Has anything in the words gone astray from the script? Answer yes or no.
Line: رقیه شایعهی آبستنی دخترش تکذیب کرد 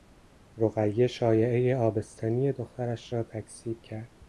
yes